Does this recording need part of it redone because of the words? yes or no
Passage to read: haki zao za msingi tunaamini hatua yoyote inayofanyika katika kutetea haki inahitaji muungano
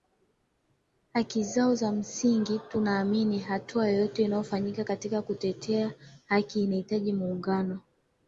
no